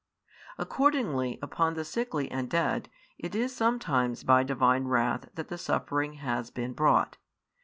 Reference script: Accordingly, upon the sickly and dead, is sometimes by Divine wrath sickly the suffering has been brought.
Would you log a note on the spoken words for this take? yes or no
yes